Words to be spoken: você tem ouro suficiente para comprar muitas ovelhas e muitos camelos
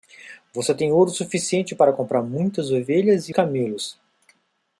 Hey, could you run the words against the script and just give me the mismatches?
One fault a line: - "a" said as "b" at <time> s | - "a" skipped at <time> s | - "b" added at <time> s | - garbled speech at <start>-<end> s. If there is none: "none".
- "muitos" skipped at 3.4 s